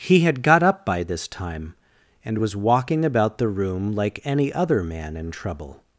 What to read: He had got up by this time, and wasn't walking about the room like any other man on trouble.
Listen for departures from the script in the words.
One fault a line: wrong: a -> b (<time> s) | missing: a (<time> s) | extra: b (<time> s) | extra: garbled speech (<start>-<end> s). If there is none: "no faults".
wrong: wasn't -> was (2.4 s)
wrong: on -> in (5.2 s)